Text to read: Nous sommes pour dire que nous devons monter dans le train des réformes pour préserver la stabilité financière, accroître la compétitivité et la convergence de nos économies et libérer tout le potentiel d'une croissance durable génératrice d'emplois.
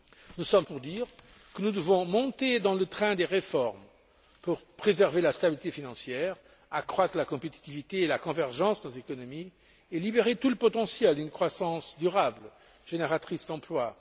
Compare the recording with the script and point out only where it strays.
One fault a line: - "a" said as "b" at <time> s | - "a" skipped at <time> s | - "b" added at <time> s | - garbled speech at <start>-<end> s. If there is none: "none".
none